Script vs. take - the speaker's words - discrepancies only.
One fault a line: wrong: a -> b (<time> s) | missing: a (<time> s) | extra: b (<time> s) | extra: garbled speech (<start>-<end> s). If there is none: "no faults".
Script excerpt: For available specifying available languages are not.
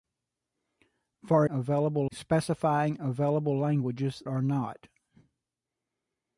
no faults